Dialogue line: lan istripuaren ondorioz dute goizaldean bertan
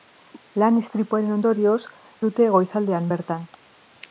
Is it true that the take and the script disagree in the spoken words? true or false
false